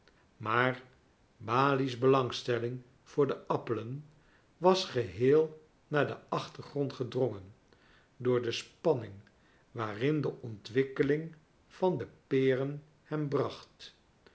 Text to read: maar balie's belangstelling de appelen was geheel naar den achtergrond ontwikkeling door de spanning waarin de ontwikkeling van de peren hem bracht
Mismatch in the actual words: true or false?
true